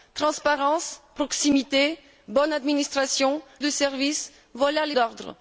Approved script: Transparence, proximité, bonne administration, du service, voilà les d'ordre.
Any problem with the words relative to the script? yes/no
no